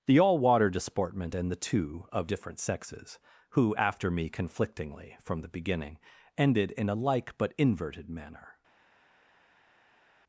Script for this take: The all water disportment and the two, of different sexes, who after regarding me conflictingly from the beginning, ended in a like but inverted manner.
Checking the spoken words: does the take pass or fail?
fail